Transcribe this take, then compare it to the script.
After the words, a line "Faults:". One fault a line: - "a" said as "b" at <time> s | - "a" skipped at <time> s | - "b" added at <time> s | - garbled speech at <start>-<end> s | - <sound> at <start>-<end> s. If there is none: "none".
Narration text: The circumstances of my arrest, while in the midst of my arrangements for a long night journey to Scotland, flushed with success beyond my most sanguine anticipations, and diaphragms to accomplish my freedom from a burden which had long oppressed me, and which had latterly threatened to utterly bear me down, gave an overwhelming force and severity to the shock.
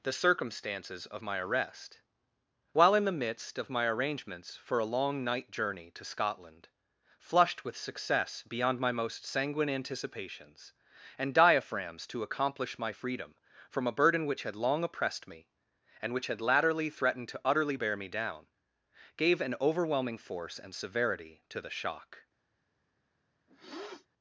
The circumstances of my arrest, while in the midst of my arrangements for a long night journey to Scotland, flushed with success beyond my most sanguine anticipations, and diaphragms to accomplish my freedom from a burden which had long oppressed me, and which had latterly threatened to utterly bear me down, gave an overwhelming force and severity to the shock.
Faults:
- sniff at 23.5-24.1 s